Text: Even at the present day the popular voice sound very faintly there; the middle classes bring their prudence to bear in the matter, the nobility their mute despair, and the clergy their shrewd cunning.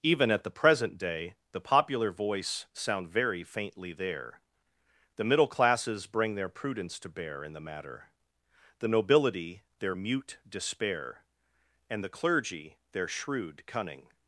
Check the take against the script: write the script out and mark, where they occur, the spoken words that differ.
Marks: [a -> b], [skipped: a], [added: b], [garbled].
Even at the present day the popular voice sound very faintly there; the middle classes bring their prudence to bear in the matter, the nobility their mute despair, and the clergy their shrewd cunning.